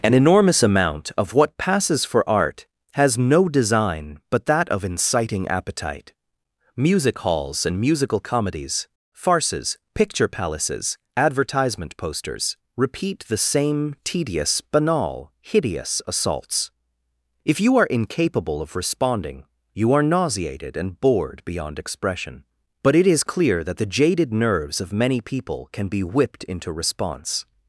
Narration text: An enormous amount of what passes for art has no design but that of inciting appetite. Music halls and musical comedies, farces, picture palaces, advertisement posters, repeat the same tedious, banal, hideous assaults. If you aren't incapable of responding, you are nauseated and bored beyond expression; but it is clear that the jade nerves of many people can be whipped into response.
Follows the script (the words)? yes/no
no